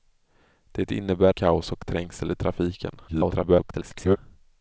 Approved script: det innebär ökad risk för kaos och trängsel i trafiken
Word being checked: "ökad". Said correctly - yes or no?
no